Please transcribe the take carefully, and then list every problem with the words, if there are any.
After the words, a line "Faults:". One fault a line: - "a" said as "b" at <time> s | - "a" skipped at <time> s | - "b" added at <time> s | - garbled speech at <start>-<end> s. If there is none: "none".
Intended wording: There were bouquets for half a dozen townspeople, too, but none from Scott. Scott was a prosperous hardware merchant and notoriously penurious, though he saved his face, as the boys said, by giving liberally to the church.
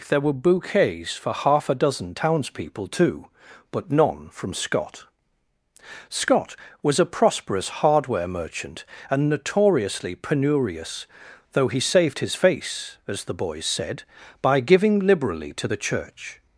There were bouquets for half a dozen townspeople, too, but none from Scott. Scott was a prosperous hardware merchant and notoriously penurious, though he saved his face, as the boys said, by giving liberally to the church.
Faults:
none